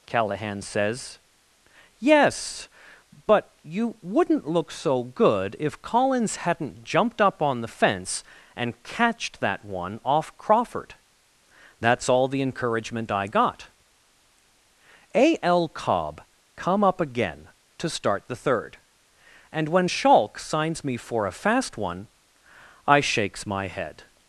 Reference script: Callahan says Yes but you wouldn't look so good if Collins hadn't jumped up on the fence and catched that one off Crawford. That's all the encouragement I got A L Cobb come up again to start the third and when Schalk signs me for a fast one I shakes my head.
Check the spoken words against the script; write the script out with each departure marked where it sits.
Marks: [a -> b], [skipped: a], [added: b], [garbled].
Callahan says Yes but you wouldn't look so good if Collins hadn't jumped up on the fence and catched that one off Crawford. That's all the encouragement I got A L Cobb come up again to start the third and when Schalk signs me for a fast one I shakes my head.